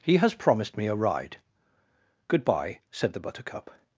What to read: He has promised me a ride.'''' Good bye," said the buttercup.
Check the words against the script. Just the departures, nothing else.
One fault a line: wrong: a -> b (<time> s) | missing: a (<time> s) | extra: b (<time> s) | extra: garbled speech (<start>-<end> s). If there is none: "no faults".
no faults